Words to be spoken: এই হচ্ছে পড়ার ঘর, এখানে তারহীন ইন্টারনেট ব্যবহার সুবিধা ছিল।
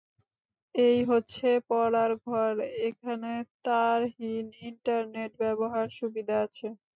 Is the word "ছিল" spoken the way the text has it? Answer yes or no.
no